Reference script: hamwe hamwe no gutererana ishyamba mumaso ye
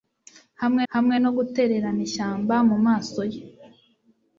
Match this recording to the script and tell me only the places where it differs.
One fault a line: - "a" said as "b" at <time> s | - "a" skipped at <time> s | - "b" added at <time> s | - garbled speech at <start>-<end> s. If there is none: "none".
none